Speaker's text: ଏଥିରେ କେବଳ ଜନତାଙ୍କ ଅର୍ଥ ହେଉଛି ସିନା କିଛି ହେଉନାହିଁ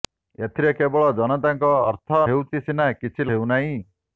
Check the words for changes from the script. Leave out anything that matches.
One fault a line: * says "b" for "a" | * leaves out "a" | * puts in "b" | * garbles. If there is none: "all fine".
all fine